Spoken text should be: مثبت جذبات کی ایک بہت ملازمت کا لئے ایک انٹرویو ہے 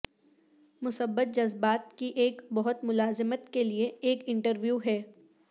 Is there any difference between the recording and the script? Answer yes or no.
yes